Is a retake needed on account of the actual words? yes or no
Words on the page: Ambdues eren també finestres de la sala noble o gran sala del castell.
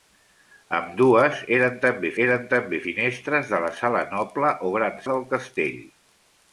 yes